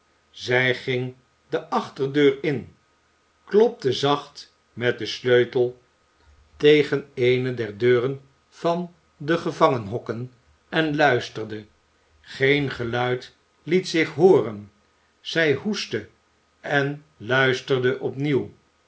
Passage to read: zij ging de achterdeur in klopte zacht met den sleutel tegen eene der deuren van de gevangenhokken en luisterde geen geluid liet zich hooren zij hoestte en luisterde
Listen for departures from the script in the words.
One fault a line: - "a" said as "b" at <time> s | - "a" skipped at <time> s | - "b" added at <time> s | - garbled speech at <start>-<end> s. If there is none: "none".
none